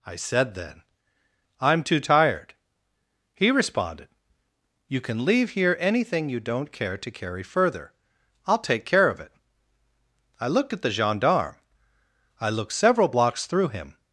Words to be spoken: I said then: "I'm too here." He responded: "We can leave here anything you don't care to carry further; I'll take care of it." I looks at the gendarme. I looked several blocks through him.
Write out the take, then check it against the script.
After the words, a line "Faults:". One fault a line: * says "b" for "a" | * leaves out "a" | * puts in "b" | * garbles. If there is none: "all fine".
I said then: "I'm too tired." He responded: "You can leave here anything you don't care to carry further; I'll take care of it." I looked at the gendarme. I looked several blocks through him.
Faults:
* says "tired" for "here"
* says "You" for "We"
* says "looked" for "looks"